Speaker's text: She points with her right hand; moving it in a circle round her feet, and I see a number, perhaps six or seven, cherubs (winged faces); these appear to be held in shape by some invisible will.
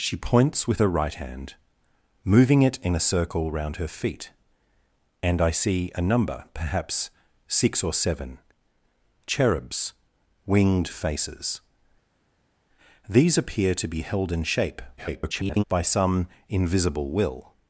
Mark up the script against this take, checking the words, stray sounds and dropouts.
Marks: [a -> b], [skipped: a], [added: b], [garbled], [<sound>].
She points with her right hand; moving it in a circle round her feet, and I see a number, perhaps six or seven, cherubs (winged faces); these appear to be held in shape [garbled] by some invisible will.